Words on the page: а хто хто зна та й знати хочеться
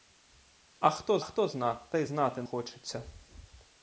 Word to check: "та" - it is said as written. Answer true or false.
true